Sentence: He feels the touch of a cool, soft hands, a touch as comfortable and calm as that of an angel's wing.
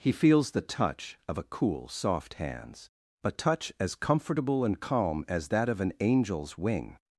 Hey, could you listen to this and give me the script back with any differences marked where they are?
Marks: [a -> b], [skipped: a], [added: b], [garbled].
He feels the touch of a cool, soft hands, a touch as comfortable and calm as that of an angel's wing.